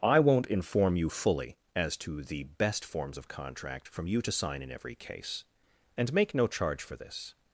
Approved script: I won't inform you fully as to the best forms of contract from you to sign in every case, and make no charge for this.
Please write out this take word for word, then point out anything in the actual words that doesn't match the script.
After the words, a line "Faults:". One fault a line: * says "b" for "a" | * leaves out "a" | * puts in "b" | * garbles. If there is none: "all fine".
I won't inform you fully as to the best forms of contract from you to sign in every case, and make no charge for this.
Faults:
all fine